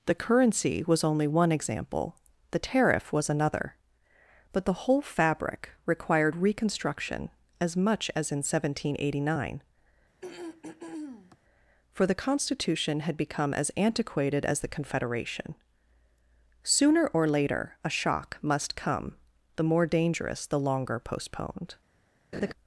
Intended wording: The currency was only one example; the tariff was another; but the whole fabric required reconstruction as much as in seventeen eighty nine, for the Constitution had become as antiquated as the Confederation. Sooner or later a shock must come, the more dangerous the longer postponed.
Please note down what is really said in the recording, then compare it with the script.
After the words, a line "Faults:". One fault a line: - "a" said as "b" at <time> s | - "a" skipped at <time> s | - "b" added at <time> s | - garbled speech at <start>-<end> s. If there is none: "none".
The currency was only one example; the tariff was another; but the whole fabric required reconstruction as much as in seventeen eighty nine, for the Constitution had become as antiquated as the Confederation. Sooner or later a shock must come, the more dangerous the longer postponed.
Faults:
none